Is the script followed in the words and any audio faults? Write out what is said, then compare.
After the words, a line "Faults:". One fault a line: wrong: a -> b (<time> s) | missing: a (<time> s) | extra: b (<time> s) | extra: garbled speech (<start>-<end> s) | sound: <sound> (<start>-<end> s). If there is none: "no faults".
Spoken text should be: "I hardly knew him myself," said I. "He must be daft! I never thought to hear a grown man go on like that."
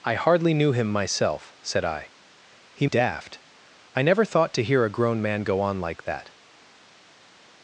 "I hardly knew him myself," said I. "He daft! I never thought to hear a grown man go on like that."
Faults:
missing: must be (2.9 s)